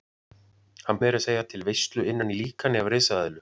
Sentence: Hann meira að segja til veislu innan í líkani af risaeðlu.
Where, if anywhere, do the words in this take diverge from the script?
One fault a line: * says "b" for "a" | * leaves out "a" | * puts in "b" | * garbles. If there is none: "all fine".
all fine